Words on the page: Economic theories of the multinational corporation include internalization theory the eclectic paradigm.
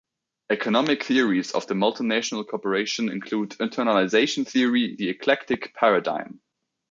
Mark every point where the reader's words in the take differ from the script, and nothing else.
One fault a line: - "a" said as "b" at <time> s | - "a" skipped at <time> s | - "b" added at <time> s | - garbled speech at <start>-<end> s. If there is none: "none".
none